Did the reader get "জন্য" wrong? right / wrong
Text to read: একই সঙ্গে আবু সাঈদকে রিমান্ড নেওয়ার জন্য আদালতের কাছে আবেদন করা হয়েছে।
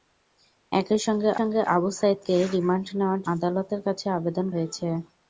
wrong